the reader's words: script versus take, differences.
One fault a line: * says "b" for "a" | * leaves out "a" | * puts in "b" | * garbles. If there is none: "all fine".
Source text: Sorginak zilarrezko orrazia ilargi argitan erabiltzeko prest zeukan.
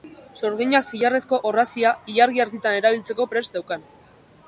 all fine